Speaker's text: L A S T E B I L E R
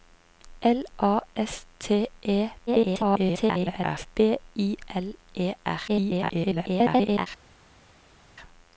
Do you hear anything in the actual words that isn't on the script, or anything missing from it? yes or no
yes